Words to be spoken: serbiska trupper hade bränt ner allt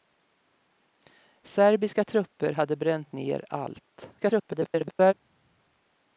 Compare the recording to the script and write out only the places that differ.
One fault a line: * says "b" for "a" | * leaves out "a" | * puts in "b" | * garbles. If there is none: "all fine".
* garbles